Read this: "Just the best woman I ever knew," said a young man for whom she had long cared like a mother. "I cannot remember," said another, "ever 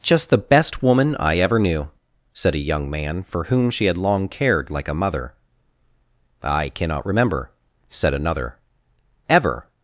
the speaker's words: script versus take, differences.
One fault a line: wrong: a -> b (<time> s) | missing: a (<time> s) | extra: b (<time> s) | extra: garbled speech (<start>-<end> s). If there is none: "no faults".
no faults